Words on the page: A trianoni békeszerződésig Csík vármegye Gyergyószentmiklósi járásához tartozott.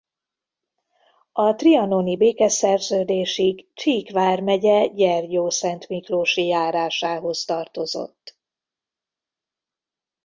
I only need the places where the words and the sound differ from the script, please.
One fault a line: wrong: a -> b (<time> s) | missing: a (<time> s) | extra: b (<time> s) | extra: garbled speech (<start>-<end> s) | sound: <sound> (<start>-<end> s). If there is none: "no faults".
no faults